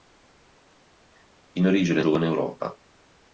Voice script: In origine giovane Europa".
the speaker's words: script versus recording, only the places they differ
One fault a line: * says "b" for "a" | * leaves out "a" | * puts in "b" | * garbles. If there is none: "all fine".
all fine